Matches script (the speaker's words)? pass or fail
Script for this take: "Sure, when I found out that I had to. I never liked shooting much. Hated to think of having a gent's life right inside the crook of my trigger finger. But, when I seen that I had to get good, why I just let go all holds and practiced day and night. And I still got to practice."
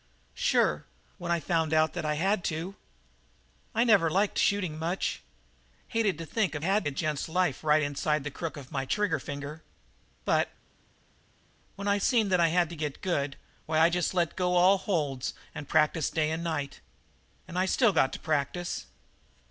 fail